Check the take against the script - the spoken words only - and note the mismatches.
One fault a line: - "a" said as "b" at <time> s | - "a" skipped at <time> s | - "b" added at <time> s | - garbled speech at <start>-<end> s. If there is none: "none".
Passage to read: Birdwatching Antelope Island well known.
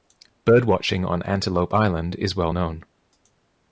- "on" added at 1.1 s
- "is" added at 2.2 s